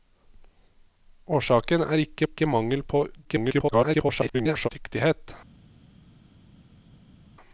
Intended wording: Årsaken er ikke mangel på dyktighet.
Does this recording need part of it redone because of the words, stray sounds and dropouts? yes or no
yes